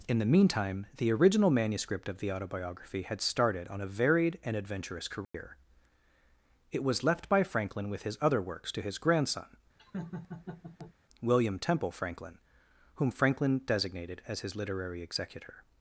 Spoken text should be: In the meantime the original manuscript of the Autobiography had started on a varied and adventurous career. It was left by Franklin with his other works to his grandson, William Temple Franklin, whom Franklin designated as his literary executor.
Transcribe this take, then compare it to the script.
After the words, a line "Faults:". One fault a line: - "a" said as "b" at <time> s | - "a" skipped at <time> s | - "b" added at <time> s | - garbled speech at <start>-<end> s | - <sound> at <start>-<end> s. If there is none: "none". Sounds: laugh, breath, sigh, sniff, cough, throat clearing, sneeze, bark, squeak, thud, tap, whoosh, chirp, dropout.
In the meantime the original manuscript of the Autobiography had started on a varied and adventurous career. It was left by Franklin with his other works to his grandson, William Temple Franklin, whom Franklin designated as his literary executor.
Faults:
- dropout at 5.2-5.3 s
- laugh at 9.8-10.9 s